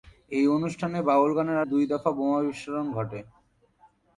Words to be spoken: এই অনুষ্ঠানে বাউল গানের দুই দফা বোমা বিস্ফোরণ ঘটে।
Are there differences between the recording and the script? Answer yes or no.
no